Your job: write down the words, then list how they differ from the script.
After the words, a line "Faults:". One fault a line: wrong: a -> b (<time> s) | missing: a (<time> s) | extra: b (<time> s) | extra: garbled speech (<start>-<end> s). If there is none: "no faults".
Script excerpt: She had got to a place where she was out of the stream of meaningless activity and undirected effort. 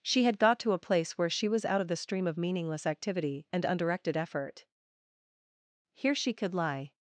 She had got to a place where she was out of the stream of meaningless activity and undirected effort. Here she could lie
Faults:
extra: Here she could lie (5.9 s)